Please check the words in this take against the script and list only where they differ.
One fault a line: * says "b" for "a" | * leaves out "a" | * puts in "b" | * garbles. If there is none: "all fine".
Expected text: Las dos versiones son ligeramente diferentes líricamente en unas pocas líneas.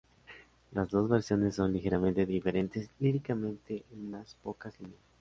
all fine